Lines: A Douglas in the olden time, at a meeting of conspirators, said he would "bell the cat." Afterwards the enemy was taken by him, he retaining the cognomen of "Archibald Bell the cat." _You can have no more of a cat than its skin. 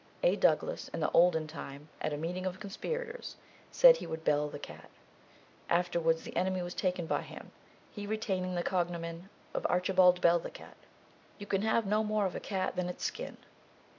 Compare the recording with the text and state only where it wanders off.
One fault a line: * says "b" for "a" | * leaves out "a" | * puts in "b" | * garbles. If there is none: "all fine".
all fine